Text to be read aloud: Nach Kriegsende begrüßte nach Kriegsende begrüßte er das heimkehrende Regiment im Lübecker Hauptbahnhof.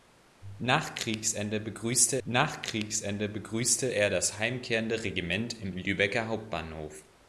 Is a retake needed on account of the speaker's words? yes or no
no